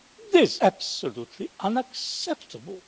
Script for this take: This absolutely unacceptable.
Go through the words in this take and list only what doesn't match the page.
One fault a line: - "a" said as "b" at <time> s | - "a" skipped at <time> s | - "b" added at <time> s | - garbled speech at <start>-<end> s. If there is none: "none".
none